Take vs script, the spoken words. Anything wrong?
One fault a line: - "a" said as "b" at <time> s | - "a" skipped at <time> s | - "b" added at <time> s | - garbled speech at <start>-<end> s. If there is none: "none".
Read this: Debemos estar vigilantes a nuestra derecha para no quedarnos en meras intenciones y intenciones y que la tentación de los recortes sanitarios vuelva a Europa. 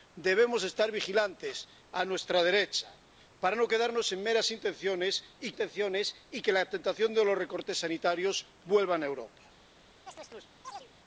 none